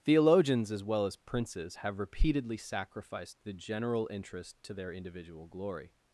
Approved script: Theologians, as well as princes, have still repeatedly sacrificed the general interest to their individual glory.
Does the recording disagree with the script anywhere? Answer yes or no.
yes